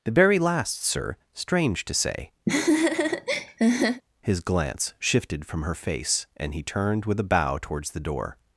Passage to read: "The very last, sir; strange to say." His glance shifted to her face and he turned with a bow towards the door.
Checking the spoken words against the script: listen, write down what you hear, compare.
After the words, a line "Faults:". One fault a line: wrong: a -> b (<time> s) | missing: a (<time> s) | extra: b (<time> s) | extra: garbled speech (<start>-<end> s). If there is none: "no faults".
"The very last, sir; strange to say." His glance shifted from her face and he turned with a bow towards the door.
Faults:
wrong: to -> from (5.4 s)